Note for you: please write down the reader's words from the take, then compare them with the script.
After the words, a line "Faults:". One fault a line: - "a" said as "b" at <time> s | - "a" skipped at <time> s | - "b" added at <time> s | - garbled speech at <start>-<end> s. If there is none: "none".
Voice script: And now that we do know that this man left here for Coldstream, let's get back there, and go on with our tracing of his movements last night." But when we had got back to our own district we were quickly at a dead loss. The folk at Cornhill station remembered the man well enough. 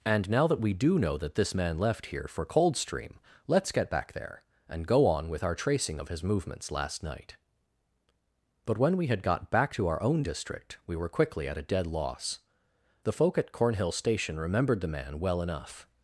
And now that we do know that this man left here for Coldstream, let's get back there, and go on with our tracing of his movements last night." But when we had got back to our own district we were quickly at a dead loss. The folk at Cornhill station remembered the man well enough.
Faults:
none